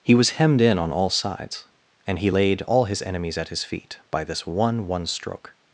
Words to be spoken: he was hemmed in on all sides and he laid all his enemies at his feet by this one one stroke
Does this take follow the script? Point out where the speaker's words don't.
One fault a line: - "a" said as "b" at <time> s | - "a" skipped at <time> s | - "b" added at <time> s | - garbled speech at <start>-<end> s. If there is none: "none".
none